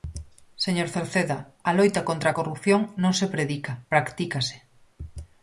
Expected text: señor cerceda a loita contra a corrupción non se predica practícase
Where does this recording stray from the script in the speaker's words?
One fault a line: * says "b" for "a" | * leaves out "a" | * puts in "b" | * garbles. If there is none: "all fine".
all fine